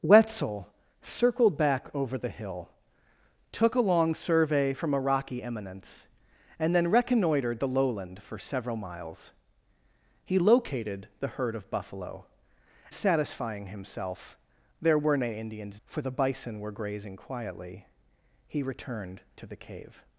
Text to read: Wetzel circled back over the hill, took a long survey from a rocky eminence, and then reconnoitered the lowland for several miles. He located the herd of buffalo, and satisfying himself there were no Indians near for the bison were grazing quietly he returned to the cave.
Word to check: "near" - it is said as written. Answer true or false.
false